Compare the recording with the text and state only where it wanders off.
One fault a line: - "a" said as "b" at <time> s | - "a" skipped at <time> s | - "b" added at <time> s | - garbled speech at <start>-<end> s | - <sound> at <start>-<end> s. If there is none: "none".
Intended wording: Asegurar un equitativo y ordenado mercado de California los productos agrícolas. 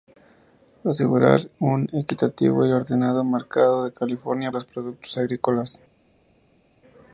none